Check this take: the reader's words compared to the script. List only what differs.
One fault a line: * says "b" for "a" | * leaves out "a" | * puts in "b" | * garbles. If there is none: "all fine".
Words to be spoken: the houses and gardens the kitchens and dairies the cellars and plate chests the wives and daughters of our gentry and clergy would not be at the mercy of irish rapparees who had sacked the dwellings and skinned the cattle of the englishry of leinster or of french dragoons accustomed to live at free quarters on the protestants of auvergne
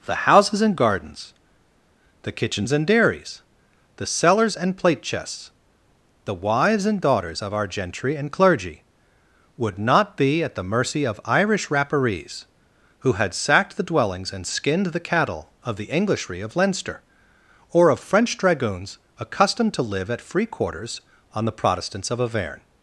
all fine